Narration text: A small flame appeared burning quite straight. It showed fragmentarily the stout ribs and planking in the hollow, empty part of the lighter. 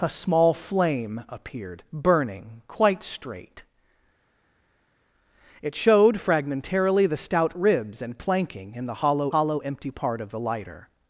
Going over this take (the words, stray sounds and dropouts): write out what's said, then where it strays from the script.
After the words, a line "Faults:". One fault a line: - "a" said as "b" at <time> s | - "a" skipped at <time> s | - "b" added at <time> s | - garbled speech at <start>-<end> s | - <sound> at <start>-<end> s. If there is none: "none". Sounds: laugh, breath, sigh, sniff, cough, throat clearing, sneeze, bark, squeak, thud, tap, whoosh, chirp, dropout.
A small flame appeared burning quite straight. It showed fragmentarily the stout ribs and planking in the hollow hollow, empty part of the lighter.
Faults:
- "hollow" added at 9.3 s